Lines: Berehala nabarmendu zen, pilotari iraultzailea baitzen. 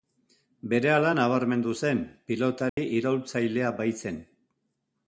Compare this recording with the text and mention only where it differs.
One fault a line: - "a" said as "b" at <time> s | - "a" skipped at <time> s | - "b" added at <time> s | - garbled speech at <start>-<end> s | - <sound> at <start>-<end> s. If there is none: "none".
- dropout at 2.7-2.8 s